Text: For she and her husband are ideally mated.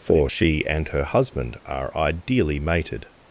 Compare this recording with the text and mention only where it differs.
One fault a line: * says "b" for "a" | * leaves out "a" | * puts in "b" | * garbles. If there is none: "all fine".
all fine